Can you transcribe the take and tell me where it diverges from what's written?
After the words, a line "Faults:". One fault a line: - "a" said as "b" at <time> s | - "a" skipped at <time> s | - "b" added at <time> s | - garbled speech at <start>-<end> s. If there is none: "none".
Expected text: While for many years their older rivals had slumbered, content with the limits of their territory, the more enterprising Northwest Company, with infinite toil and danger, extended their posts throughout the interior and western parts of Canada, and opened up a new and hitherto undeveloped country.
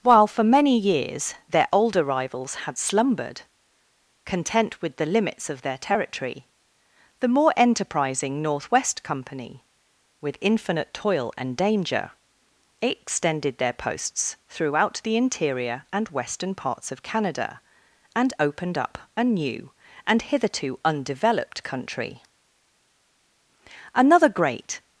While for many years their older rivals had slumbered, content with the limits of their territory, the more enterprising Northwest Company, with infinite toil and danger, extended their posts throughout the interior and western parts of Canada, and opened up a new and hitherto undeveloped country. Another great
Faults:
- "Another great" added at 23.9 s